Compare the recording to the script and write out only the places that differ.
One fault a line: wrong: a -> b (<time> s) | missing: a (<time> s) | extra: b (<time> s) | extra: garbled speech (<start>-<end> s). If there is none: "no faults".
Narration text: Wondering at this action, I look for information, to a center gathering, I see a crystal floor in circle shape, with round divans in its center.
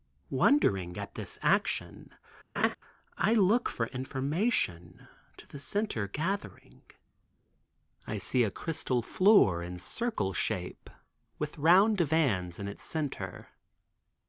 wrong: a -> the (5.5 s)